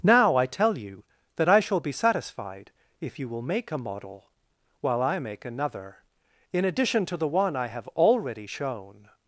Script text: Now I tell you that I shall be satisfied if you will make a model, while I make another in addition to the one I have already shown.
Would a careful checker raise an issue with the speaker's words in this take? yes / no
no